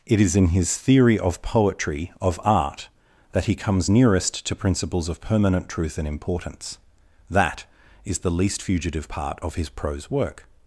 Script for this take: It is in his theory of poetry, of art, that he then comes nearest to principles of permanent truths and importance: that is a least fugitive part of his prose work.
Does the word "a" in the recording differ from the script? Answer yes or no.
yes